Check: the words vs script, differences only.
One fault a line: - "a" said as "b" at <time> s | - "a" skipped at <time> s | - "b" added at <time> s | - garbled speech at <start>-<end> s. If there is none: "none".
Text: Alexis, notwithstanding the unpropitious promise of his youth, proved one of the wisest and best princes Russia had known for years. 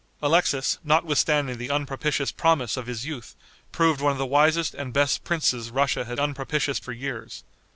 - "known" said as "unpropitious" at 6.2 s